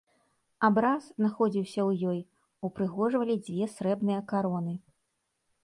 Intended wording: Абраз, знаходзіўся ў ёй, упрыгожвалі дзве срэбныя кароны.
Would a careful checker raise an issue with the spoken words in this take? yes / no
no